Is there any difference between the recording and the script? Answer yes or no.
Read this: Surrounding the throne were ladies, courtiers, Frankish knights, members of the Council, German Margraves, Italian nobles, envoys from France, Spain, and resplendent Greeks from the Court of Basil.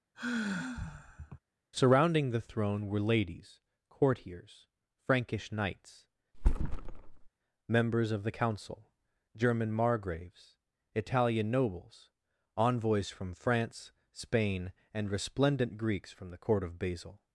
no